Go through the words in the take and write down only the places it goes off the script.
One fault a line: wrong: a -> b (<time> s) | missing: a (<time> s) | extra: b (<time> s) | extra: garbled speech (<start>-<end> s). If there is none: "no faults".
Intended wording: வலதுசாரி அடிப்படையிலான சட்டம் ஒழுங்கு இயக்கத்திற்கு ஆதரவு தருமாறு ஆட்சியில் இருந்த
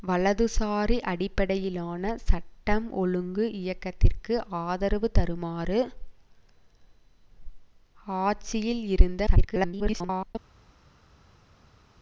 extra: garbled speech (9.3-10.4 s)